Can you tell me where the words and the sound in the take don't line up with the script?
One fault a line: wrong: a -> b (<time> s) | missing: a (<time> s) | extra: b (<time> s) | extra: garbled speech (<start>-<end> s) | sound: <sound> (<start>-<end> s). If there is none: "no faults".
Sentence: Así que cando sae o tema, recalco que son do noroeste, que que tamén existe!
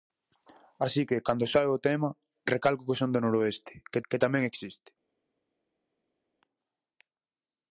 no faults